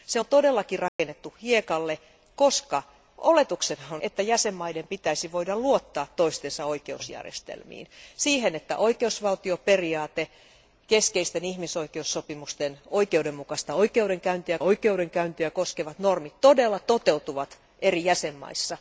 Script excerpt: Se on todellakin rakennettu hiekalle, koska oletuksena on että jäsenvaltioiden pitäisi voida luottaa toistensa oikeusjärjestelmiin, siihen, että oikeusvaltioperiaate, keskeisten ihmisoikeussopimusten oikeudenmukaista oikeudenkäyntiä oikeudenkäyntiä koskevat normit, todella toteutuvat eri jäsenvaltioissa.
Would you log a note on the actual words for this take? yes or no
no